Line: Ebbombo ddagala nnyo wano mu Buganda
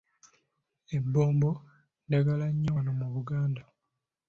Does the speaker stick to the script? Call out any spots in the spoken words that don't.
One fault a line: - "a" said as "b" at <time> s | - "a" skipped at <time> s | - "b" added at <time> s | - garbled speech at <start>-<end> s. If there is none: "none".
none